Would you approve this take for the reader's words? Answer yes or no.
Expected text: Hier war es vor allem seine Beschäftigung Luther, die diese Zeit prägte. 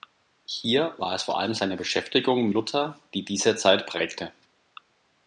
yes